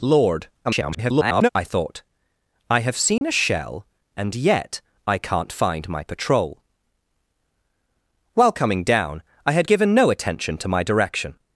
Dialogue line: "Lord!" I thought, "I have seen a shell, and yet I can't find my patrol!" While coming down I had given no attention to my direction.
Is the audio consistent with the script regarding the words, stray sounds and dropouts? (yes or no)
no